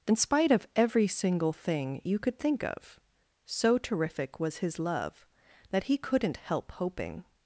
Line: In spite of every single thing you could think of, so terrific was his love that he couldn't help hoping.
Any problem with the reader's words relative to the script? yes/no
no